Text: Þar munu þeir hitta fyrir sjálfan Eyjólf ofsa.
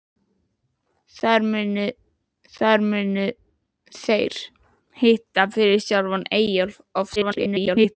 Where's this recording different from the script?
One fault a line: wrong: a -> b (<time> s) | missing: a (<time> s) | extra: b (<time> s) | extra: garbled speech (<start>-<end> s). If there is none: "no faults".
extra: þar munu (2.6 s)
extra: garbled speech (7.2-8.0 s)